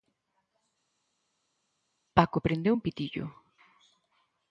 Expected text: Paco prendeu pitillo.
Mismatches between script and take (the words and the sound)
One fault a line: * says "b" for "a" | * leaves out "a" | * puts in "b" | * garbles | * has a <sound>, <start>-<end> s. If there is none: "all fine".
* puts in "un"